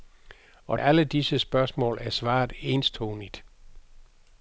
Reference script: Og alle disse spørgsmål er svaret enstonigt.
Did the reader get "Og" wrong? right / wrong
right